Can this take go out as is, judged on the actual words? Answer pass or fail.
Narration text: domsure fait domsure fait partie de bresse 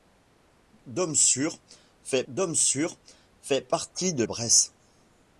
pass